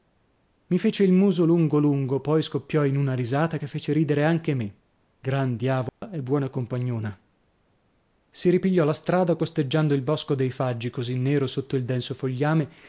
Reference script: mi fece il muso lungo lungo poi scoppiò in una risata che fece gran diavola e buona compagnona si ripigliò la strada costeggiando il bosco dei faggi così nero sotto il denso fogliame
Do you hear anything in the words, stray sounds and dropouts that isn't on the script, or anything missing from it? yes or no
yes